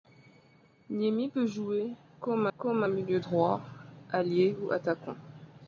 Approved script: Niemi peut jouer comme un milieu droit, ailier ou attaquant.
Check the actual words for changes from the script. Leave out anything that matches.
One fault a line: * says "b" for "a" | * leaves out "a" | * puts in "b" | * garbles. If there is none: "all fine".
* puts in "comme"